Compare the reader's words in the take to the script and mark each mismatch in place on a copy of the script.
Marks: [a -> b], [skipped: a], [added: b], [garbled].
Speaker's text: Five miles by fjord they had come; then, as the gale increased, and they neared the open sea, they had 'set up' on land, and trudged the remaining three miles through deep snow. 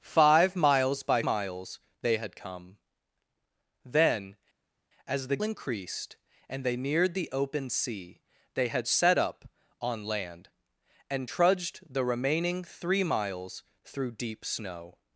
Five miles by [fjord -> miles] they had come; then, as the [skipped: gale] increased, and they neared the open sea, they had 'set up' on land, and trudged the remaining three miles through deep snow.